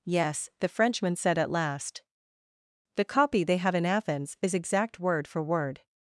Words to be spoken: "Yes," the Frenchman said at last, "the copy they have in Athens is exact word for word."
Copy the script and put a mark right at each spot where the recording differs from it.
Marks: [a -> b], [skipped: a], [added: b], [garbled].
"Yes," the Frenchman said at last, "the copy they have in Athens is exact word for word."